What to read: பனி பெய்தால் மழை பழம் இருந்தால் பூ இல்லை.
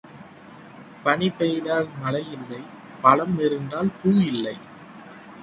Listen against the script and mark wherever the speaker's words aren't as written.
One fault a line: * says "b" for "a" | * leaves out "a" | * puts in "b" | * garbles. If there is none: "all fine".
* puts in "இல்லை"